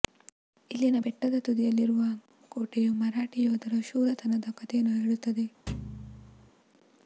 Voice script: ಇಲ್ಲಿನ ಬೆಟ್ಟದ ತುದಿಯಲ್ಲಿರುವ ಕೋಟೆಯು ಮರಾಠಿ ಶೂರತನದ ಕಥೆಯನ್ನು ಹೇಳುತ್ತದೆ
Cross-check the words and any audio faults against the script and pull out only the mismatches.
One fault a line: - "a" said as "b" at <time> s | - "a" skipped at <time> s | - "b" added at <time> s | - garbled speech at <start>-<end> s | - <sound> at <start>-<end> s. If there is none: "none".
- "ಯೋಧರ" added at 3.4 s
- thud at 5.7-6.5 s